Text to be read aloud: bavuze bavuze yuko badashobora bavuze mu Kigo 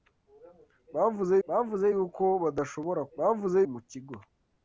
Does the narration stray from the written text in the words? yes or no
no